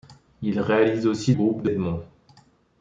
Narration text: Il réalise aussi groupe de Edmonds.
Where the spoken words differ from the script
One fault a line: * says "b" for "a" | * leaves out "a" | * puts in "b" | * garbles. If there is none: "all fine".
all fine